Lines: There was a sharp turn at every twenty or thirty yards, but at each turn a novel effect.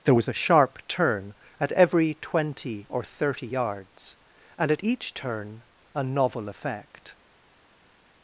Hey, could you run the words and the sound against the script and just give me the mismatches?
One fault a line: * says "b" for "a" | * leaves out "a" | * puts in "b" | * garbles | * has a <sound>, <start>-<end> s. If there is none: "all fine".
* says "and" for "but"